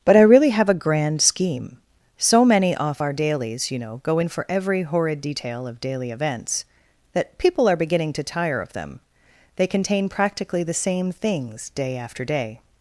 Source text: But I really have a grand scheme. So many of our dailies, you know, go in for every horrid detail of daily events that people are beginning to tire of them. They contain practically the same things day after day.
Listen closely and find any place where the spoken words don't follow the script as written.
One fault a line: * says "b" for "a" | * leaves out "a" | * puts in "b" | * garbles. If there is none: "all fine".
* says "off" for "of"